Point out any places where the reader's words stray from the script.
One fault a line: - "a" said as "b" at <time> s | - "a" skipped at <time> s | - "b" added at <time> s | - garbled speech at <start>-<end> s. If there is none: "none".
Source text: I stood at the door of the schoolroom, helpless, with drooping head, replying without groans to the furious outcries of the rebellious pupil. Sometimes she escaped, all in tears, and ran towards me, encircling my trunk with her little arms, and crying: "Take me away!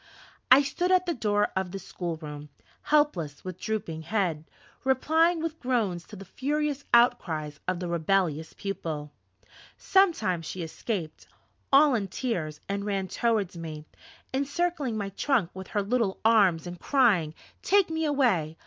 - "without" said as "with" at 5.4 s